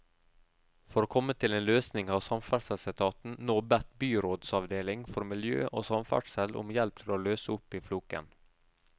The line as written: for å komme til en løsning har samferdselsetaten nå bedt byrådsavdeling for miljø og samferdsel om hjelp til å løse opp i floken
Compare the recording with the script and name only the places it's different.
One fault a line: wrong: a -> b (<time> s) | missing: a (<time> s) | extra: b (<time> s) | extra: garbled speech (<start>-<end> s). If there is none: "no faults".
no faults